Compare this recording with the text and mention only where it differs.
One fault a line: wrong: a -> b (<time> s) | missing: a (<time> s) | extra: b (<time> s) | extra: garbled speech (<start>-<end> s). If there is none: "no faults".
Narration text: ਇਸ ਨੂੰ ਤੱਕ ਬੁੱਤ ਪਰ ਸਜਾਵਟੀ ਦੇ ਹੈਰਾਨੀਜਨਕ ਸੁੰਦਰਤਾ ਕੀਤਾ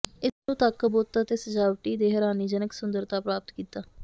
wrong: ਪਰ -> ਅਤੇ (1.2 s)
extra: ਪ੍ਰਾਪਤ (3.2 s)